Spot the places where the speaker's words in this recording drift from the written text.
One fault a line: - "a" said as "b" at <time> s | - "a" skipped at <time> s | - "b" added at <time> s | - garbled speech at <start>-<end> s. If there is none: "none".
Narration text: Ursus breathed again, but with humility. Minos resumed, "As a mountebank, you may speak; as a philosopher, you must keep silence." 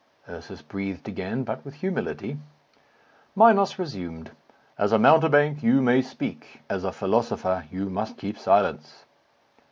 none